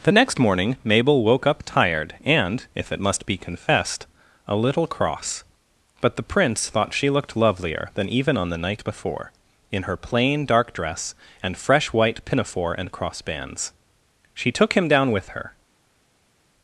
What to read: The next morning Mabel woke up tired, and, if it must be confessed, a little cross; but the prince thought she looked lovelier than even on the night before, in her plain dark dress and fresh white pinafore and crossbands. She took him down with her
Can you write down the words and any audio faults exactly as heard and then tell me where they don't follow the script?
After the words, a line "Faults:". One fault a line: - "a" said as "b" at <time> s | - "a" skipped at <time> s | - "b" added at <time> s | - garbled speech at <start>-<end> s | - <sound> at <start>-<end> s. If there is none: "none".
The next morning Mabel woke up tired, and, if it must be confessed, a little cross; but the prince thought she looked lovelier than even on the night before, in her plain dark dress and fresh white pinafore and crossbands. She took him down with her
Faults:
none